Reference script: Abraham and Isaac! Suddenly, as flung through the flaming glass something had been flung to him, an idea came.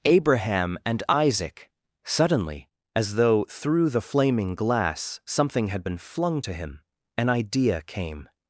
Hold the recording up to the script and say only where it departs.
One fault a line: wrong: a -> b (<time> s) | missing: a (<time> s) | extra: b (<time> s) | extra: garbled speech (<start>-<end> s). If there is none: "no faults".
wrong: flung -> though (3.1 s)